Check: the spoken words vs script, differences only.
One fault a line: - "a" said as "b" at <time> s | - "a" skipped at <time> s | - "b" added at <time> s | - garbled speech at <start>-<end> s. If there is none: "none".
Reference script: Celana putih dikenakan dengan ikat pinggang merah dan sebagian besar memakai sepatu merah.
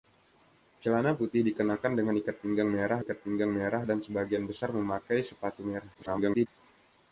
- "ikat pinggang merah" added at 3.0 s
- garbled speech at 5.9-6.5 s